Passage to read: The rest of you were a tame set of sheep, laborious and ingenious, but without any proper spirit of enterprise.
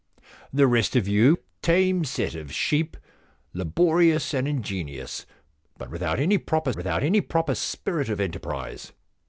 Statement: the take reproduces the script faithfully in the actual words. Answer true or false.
false